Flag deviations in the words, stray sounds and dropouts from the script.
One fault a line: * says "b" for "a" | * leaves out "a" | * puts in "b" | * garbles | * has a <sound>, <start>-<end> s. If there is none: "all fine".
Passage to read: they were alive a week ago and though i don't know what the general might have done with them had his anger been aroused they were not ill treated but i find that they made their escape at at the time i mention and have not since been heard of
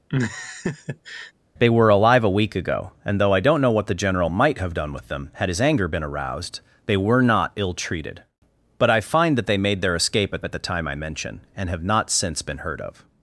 * has a laugh, 0.1-1.3 s